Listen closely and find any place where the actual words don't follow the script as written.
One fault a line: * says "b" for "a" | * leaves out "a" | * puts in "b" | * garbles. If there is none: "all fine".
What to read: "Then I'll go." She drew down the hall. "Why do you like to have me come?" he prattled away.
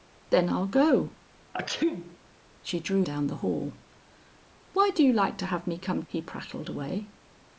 all fine